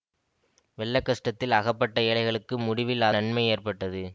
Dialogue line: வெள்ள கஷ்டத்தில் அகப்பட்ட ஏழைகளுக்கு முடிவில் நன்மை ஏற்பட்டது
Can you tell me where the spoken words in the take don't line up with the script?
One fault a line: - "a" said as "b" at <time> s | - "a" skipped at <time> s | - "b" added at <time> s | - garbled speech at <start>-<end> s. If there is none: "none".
none